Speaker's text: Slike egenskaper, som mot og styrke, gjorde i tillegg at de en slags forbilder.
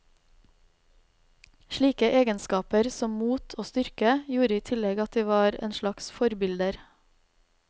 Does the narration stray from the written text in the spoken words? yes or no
yes